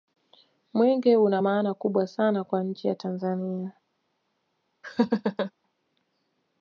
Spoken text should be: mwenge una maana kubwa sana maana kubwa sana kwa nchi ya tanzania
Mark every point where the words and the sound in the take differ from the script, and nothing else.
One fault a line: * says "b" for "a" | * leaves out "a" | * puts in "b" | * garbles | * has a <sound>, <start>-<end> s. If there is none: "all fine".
* leaves out "maana kubwa sana"
* has a laugh, 4.8-5.5 s